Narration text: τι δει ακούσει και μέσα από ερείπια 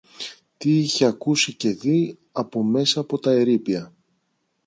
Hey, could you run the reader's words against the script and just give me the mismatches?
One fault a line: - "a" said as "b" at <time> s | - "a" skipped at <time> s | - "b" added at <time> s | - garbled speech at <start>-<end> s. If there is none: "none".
- "δει" said as "είχε" at 0.8 s
- "δει από" added at 1.7 s
- "τα" added at 3.2 s